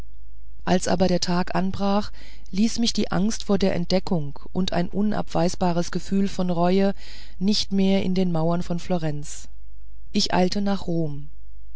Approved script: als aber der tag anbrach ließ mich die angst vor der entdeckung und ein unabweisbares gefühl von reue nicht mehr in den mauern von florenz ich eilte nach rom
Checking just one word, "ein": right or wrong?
right